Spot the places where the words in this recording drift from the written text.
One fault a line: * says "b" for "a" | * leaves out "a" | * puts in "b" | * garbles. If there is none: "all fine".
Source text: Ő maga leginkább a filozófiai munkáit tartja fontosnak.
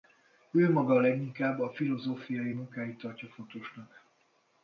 all fine